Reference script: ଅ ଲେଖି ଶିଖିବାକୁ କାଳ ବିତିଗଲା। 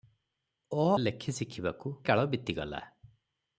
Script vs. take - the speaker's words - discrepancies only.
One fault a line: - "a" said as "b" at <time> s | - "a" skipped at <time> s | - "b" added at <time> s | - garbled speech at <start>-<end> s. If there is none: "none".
none